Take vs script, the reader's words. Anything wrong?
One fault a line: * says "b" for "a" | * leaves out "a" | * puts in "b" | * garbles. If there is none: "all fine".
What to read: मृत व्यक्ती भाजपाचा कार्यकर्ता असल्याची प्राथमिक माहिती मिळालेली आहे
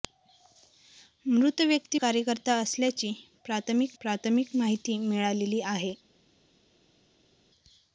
* leaves out "भाजपाचा"
* puts in "प्राथमिक"